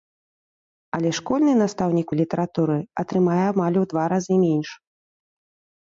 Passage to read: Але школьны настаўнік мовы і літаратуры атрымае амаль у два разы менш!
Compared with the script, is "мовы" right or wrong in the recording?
wrong